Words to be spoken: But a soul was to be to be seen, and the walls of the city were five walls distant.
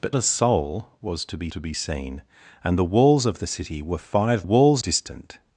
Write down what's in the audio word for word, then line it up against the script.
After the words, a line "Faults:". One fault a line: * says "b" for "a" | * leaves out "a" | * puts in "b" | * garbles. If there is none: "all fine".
But a soul was to be to be seen, and the walls of the city were five walls distant.
Faults:
all fine